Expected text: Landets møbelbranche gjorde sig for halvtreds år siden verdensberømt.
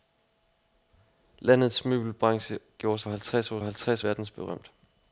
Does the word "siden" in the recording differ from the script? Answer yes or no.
yes